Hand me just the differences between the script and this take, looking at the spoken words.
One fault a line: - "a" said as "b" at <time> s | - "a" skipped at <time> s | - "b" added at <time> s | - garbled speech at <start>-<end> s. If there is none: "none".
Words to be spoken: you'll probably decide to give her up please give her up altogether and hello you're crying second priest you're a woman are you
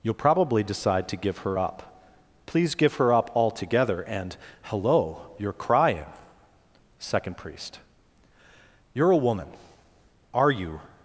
none